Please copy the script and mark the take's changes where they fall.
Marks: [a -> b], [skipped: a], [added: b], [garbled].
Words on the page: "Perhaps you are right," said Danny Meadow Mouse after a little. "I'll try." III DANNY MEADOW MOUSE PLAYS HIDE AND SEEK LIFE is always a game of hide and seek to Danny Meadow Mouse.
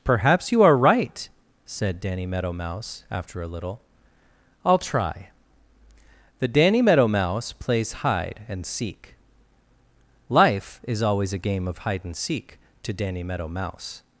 "Perhaps you are right," said Danny Meadow Mouse after a little. "I'll try." [III -> The] DANNY MEADOW MOUSE PLAYS HIDE AND SEEK LIFE is always a game of hide and seek to Danny Meadow Mouse.